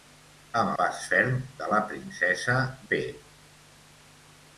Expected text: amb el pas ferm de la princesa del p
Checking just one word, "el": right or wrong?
wrong